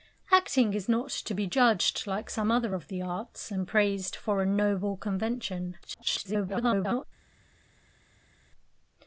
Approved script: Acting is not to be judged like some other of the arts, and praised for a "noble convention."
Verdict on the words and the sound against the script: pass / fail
fail